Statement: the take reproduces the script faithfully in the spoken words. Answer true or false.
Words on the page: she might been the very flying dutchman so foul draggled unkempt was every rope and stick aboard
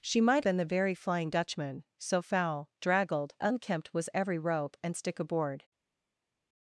true